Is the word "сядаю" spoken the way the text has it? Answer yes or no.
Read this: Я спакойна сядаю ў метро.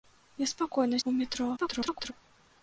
no